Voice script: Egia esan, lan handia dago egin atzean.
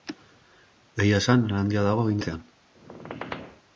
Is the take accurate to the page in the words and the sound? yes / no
no